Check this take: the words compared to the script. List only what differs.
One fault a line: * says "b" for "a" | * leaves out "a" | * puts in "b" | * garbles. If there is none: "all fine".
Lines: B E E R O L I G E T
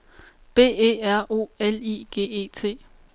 * leaves out "E"